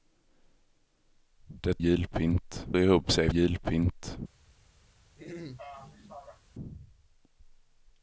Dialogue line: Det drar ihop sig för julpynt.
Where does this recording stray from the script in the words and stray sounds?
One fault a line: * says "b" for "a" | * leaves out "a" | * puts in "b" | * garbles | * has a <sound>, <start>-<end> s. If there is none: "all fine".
* says "julpynt" for "drar"
* leaves out "för"
* has a throat clearing, 5.2-6.4 s